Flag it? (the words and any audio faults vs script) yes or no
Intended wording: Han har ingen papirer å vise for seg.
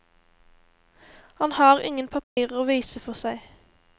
yes